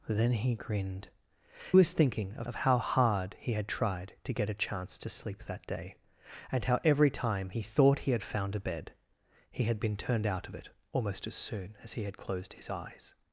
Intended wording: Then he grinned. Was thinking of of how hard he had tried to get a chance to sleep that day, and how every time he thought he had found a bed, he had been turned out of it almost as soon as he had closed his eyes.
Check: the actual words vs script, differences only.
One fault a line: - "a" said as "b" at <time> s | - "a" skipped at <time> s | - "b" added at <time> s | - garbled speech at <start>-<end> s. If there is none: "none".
none